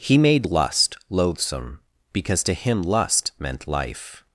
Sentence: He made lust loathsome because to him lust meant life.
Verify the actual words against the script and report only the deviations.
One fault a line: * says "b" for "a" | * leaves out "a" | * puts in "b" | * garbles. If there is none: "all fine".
all fine